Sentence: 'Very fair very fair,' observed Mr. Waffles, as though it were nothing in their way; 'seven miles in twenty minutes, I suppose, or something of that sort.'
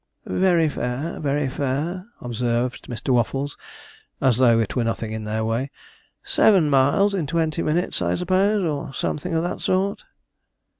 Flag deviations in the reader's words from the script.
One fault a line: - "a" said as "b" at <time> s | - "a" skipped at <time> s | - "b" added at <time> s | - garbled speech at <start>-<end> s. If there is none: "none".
none